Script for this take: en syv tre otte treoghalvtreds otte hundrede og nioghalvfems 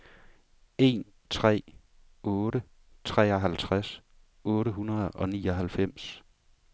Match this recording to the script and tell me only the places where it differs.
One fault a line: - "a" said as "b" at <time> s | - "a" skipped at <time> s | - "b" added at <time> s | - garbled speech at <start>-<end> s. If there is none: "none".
- "syv" skipped at 1.1 s